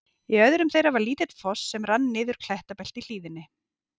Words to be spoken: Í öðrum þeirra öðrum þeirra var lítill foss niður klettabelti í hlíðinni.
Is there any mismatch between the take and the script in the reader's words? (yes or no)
yes